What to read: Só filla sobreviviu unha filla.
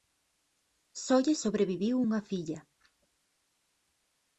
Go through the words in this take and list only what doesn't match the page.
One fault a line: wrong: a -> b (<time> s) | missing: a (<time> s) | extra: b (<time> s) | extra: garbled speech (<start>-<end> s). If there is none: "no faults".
wrong: filla -> lle (1.2 s)